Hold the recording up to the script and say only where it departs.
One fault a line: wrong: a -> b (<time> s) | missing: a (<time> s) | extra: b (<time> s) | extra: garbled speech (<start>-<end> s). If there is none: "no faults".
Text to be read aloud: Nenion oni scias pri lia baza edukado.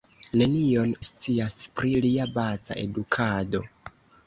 missing: oni (0.9 s)